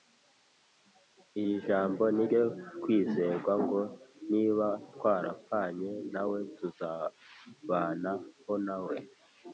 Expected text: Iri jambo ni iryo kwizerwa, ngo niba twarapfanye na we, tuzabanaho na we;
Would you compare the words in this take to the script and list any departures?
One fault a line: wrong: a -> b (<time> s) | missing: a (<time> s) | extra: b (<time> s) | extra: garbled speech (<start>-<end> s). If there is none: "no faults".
no faults